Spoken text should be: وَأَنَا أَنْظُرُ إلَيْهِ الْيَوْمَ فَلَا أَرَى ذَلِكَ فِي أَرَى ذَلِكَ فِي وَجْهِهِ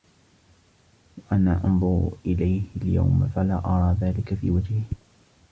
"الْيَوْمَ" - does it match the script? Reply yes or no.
yes